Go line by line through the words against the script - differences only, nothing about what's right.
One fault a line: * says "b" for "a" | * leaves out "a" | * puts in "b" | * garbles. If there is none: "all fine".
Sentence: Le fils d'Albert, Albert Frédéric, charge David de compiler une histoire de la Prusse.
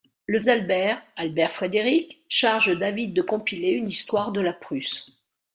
* leaves out "fils"